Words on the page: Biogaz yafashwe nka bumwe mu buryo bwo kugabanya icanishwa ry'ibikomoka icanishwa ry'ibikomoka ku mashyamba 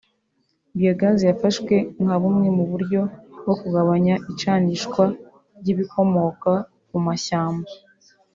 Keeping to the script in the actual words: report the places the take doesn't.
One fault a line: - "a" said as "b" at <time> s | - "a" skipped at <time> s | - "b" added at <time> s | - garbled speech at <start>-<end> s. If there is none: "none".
- "icanishwa ry'ibikomoka" skipped at 6.5 s